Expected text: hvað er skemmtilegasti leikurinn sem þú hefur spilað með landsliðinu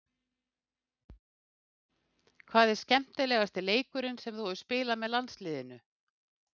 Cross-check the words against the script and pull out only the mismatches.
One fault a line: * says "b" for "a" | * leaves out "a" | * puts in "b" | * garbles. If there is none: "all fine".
all fine